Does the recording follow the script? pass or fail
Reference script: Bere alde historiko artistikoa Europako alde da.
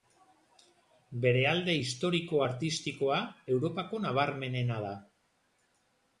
fail